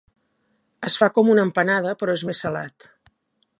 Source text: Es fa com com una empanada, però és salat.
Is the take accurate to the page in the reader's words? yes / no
no